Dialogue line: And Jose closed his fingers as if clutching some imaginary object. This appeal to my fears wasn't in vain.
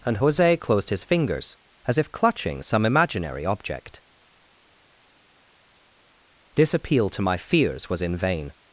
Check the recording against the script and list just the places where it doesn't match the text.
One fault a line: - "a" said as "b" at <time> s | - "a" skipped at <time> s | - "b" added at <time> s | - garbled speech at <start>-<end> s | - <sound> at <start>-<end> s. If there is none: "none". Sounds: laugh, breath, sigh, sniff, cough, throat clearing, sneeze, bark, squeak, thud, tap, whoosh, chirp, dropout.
- "wasn't" said as "was" at 7.9 s